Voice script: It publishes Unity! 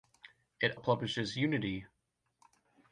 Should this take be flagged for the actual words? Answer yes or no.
no